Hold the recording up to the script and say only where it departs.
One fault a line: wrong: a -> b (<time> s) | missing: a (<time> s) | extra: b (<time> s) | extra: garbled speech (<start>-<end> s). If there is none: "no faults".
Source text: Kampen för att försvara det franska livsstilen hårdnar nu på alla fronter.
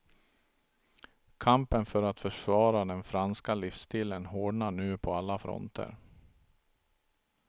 wrong: det -> den (2.9 s)